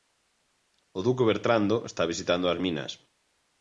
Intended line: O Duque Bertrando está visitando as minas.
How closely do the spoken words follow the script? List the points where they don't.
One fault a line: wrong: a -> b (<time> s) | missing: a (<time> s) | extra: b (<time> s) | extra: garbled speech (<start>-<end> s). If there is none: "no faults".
no faults